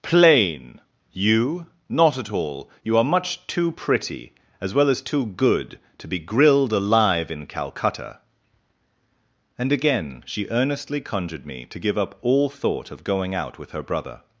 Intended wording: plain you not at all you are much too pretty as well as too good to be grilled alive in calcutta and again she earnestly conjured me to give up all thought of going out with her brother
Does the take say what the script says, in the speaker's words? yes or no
yes